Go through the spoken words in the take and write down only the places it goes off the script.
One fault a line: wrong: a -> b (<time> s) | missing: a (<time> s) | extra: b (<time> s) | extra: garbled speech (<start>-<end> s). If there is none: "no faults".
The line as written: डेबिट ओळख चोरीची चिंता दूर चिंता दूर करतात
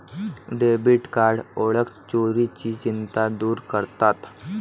extra: कार्ड (1.1 s)
missing: चिंता दूर (3.6 s)